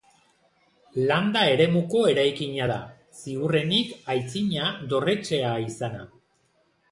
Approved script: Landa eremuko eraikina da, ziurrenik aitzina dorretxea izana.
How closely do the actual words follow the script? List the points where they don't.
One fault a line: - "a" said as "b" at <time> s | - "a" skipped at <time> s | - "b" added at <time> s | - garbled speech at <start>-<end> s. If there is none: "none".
none